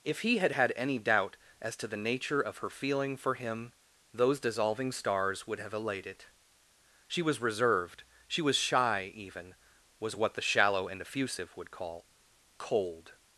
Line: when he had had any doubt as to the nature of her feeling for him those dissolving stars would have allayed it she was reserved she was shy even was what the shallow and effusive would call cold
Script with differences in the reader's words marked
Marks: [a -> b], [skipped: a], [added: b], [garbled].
[when -> if] he had had any doubt as to the nature of her feeling for him those dissolving stars would have allayed it she was reserved she was shy even was what the shallow and effusive would call cold